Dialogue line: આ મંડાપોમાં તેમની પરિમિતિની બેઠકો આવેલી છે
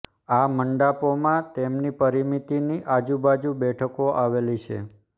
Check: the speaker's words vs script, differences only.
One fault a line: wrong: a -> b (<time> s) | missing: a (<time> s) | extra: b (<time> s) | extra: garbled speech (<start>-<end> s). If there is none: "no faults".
extra: આજુબાજુ (2.9 s)